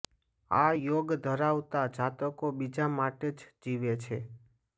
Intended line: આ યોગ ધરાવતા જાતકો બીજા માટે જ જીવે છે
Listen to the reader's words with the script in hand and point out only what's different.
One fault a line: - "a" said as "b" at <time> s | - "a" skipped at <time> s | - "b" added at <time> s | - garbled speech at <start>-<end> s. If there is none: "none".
none